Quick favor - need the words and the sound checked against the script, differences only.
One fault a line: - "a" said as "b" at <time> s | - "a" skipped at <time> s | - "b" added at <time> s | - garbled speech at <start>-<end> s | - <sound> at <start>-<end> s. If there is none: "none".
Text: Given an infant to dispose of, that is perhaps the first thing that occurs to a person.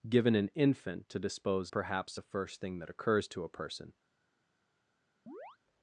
- "of that is" skipped at 1.7 s
- chirp at 5.3-5.6 s